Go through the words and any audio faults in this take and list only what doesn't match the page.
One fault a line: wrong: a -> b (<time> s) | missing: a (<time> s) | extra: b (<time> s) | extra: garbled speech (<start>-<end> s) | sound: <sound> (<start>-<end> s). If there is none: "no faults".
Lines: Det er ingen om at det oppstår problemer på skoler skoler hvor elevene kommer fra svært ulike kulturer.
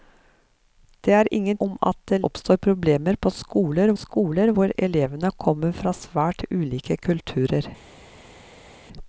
no faults